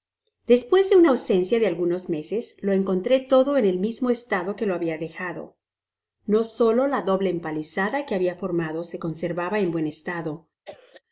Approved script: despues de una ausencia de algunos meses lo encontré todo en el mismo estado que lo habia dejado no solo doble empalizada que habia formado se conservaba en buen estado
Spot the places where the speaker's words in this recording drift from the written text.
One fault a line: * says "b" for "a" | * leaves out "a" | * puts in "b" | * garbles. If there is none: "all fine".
* puts in "la"